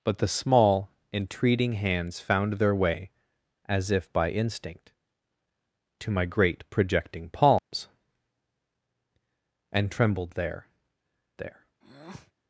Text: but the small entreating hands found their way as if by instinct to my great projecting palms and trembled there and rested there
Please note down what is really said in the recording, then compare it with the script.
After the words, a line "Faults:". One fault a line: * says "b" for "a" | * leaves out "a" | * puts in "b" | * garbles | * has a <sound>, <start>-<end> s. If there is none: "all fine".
but the small entreating hands found their way as if by instinct to my great projecting palms and trembled there there
Faults:
* has a dropout, 7.6-7.7 s
* leaves out "and rested"
* has a breath, 11.8-12.3 s